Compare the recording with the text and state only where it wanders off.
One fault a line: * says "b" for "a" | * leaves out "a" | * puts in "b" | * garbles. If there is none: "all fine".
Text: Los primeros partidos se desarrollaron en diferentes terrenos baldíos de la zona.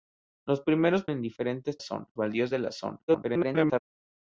* leaves out "partidos se desarrollaron"
* says "zona" for "terrenos"
* garbles